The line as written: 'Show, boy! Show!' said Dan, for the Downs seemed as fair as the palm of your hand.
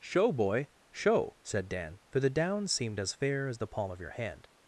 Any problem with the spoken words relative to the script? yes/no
no